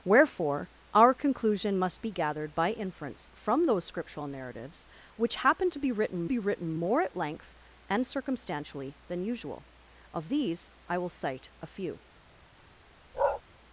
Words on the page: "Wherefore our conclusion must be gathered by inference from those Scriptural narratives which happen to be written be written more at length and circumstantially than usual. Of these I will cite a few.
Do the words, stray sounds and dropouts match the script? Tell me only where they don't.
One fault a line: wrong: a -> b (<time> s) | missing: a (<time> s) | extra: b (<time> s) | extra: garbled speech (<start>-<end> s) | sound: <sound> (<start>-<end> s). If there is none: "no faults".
sound: bark (13.1-13.4 s)